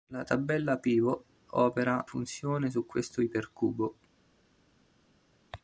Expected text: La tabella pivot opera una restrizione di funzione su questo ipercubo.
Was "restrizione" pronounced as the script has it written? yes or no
no